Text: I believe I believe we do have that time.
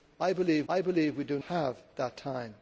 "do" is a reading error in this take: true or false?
false